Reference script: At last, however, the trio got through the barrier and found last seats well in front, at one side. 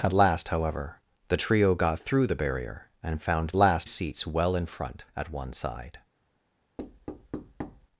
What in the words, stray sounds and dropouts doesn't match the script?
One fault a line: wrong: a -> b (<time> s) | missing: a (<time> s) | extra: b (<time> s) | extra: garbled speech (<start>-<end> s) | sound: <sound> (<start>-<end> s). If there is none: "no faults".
sound: thud (6.8-7.9 s)